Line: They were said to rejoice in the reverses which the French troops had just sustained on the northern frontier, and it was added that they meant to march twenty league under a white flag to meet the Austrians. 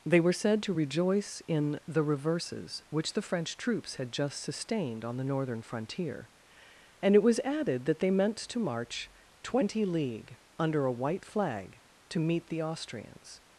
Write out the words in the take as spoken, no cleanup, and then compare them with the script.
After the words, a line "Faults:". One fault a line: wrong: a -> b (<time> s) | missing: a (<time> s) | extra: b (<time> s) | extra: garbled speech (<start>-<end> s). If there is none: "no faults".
They were said to rejoice in the reverses which the French troops had just sustained on the northern frontier, and it was added that they meant to march twenty league under a white flag to meet the Austrians.
Faults:
no faults